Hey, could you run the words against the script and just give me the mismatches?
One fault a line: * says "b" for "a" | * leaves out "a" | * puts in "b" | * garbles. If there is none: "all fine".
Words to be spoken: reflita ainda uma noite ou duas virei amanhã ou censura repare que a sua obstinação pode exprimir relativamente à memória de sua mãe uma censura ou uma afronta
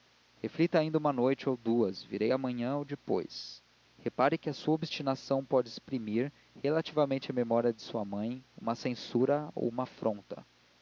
* says "depois" for "censura"